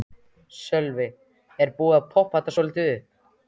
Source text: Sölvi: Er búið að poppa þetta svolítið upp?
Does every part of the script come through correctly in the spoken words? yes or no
yes